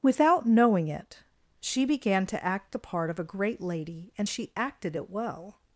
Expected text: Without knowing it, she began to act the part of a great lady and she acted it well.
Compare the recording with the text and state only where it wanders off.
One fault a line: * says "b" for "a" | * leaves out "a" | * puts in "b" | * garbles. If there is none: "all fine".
all fine